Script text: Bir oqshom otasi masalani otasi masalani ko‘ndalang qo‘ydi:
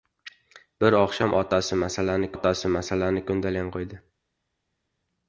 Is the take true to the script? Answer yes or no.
yes